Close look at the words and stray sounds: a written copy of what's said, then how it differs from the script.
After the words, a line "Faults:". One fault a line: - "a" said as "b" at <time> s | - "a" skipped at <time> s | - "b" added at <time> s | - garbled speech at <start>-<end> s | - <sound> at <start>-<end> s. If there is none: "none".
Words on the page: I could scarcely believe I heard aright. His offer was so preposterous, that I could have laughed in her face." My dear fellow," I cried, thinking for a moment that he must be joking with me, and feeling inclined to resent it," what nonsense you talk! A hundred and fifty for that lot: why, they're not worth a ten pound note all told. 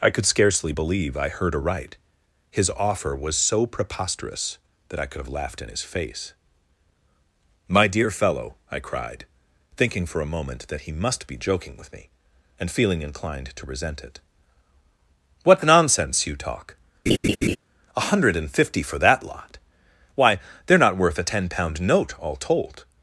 I could scarcely believe I heard aright. His offer was so preposterous, that I could have laughed in his face." My dear fellow," I cried, thinking for a moment that he must be joking with me, and feeling inclined to resent it," what nonsense you talk! A hundred and fifty for that lot: why, they're not worth a ten pound note all told.
Faults:
- "her" said as "his" at 5.7 s
- laugh at 17.1-17.6 s